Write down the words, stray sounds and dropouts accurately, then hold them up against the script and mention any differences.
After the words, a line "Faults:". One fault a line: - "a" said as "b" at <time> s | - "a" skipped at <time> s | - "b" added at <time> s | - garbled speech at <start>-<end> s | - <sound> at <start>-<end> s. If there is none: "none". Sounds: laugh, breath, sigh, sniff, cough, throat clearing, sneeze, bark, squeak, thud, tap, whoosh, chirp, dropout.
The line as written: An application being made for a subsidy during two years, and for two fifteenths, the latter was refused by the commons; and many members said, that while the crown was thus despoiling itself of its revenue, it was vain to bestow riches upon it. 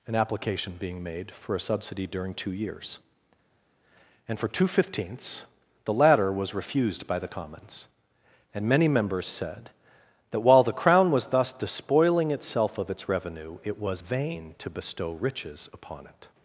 An application being made for a subsidy during two years, and for two fifteenths, the latter was refused by the commons; and many members said, that while the crown was thus despoiling itself of its revenue, it was vain to bestow riches upon it.
Faults:
none